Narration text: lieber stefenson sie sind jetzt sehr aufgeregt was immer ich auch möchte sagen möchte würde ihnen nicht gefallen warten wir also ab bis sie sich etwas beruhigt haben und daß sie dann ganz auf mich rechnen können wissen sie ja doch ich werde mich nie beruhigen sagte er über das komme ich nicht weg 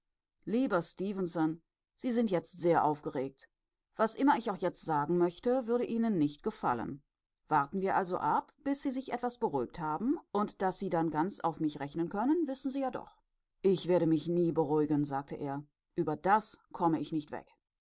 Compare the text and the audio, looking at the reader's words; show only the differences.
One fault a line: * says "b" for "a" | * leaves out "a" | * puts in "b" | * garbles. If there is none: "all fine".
* says "jetzt" for "möchte"